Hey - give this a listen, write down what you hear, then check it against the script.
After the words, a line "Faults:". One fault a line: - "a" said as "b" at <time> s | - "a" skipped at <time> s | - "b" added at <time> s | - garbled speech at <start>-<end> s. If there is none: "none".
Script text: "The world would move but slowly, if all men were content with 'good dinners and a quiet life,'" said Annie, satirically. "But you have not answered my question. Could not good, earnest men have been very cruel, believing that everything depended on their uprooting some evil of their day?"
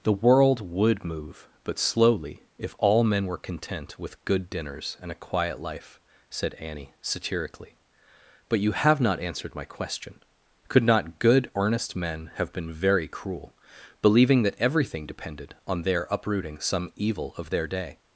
"The world would move but slowly, if all men were content with 'good dinners and a quiet life,'" said Annie, satirically. "But you have not answered my question. Could not good, earnest men have been very cruel, believing that everything depended on their uprooting some evil of their day?"
Faults:
none